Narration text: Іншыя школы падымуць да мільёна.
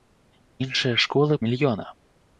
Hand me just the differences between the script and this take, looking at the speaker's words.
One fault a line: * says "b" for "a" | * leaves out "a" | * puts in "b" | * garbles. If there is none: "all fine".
* leaves out "падымуць да"